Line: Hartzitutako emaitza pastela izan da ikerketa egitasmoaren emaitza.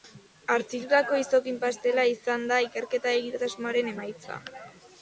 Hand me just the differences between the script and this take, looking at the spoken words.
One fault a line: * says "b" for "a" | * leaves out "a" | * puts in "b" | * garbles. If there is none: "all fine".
* says "izokin" for "emaitza"